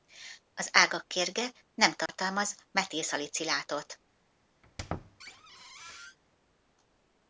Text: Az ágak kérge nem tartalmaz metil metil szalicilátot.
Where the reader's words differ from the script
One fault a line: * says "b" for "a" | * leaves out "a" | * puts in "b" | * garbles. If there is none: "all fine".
* leaves out "metil"